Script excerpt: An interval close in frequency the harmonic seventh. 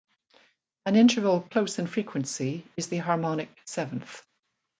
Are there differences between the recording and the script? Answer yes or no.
yes